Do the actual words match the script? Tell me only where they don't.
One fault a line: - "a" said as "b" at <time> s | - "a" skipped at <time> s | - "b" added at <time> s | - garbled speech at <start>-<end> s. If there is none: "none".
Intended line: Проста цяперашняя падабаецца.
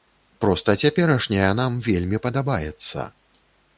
- "нам вельмі" added at 1.6 s